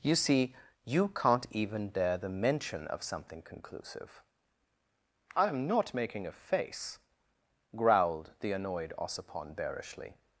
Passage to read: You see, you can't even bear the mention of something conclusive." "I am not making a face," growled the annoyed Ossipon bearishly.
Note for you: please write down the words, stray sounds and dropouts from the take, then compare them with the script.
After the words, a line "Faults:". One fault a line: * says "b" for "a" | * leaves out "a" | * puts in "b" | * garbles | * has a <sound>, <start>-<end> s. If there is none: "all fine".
You see, you can't even dare the mention of something conclusive." "I am not making a face," growled the annoyed Ossipon bearishly.
Faults:
* says "dare" for "bear"